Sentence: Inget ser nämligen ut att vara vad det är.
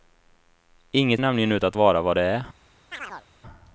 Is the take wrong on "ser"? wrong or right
wrong